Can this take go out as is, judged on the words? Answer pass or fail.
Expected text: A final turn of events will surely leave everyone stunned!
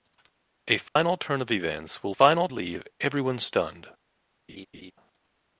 fail